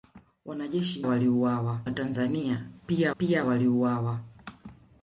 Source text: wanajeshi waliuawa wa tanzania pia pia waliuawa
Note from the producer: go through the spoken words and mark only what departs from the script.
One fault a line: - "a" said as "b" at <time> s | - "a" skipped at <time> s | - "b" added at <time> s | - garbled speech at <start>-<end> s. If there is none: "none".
none